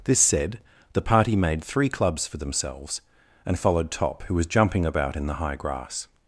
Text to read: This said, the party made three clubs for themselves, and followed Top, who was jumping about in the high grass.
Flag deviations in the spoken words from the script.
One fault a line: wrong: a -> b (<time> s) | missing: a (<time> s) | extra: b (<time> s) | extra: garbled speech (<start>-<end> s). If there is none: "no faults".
no faults